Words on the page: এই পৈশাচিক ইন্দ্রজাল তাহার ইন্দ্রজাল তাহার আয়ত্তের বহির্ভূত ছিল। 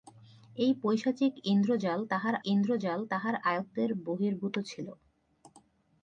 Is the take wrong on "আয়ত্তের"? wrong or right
right